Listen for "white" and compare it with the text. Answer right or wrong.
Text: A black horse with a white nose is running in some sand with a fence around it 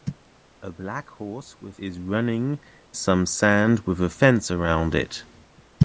wrong